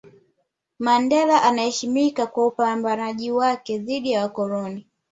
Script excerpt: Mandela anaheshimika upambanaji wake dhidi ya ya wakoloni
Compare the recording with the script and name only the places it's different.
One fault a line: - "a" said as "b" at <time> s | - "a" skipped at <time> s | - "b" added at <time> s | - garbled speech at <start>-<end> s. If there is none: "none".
- "kwa" added at 2.3 s
- "ya" skipped at 4.2 s